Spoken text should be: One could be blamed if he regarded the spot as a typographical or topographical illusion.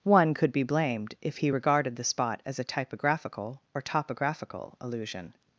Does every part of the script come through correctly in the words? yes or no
yes